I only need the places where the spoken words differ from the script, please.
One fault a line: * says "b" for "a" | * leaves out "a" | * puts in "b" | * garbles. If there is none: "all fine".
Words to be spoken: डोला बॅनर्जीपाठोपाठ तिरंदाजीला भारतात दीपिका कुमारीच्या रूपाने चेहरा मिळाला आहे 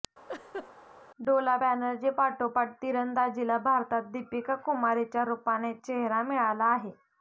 all fine